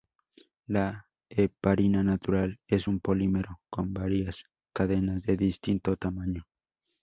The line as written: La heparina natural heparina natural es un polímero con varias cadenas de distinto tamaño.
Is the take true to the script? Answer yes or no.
no